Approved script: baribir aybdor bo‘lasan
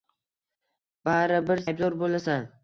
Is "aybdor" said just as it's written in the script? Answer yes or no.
yes